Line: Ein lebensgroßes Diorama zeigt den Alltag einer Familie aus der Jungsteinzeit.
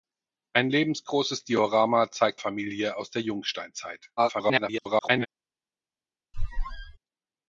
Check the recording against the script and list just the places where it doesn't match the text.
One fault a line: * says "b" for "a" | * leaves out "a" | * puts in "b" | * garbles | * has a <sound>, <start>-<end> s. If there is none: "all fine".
* leaves out "den Alltag einer"
* garbles
* has a squeak, 6.3-7.0 s